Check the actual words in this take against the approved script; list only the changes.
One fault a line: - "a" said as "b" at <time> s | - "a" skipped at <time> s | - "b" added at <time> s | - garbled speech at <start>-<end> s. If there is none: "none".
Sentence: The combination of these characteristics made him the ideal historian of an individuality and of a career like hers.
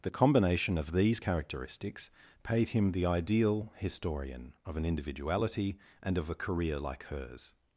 - "made" said as "paid" at 2.4 s